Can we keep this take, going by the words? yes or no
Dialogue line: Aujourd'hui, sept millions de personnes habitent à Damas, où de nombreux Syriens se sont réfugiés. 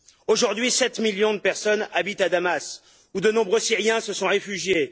yes